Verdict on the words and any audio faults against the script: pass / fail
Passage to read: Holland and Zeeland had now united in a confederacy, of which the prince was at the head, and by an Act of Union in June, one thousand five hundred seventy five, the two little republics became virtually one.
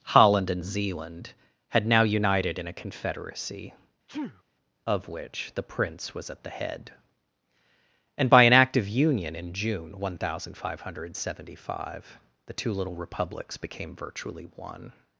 fail